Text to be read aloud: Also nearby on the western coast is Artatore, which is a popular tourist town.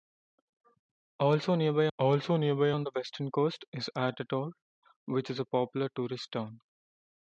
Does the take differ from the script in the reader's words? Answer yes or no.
yes